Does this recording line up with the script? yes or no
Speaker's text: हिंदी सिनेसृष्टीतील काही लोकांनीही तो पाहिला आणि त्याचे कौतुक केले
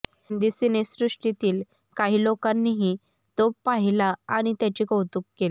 yes